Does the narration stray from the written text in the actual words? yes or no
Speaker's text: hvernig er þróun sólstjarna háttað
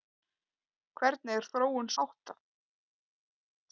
yes